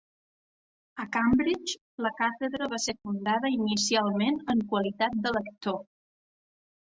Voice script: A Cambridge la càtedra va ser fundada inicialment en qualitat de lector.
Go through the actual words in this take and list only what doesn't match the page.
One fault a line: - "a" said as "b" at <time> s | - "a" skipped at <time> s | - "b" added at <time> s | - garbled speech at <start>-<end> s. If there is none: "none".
none